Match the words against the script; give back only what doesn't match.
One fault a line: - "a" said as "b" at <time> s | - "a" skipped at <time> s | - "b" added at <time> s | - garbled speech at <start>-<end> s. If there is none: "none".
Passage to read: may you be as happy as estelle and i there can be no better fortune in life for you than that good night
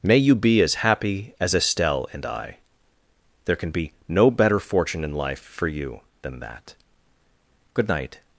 none